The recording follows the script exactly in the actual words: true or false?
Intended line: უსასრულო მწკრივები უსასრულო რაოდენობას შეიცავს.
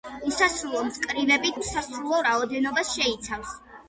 true